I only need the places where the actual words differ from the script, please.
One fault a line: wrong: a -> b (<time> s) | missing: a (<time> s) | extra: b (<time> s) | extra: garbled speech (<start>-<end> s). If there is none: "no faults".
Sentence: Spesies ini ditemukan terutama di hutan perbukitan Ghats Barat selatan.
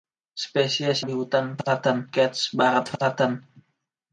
missing: ini ditemukan terutama (1.1 s)
wrong: perbukitan -> selatan (1.6 s)